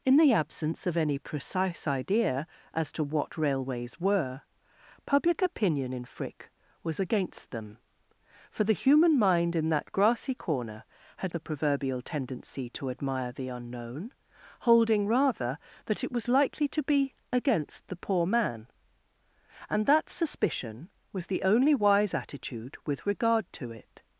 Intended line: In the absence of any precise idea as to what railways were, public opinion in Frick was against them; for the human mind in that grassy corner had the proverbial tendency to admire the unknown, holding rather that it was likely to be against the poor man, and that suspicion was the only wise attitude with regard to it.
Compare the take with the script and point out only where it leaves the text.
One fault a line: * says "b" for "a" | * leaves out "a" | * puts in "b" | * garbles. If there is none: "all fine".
all fine